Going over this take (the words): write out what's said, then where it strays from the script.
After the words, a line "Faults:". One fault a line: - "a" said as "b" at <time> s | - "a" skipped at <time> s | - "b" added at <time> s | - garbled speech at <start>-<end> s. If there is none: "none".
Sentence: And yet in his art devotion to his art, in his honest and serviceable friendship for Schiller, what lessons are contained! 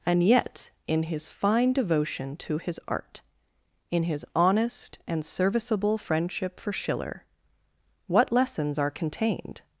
And yet in his fine devotion to his art, in his honest and serviceable friendship for Schiller, what lessons are contained!
Faults:
- "art" said as "fine" at 1.3 s